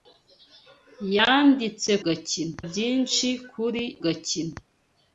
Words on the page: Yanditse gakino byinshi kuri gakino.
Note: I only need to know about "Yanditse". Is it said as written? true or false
true